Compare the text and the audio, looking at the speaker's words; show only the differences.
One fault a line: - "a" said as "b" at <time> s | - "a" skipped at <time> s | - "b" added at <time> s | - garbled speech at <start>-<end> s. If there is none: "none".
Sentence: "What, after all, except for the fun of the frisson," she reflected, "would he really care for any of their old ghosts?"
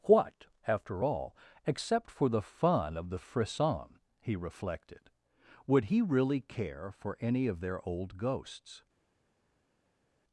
- "she" said as "he" at 4.2 s